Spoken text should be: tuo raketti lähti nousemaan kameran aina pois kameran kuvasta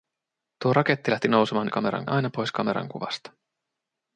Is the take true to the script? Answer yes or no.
yes